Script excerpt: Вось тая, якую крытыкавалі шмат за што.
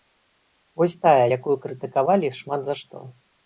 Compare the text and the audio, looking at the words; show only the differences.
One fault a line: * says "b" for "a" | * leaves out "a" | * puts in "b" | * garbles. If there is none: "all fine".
all fine